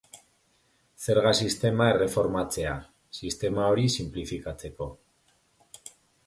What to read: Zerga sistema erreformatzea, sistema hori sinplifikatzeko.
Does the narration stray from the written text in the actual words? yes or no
no